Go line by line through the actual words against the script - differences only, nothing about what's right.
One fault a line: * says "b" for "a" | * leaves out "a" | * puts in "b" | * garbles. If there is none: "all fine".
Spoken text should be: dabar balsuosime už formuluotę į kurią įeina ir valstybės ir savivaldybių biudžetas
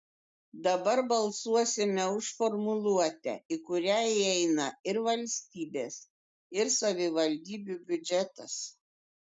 all fine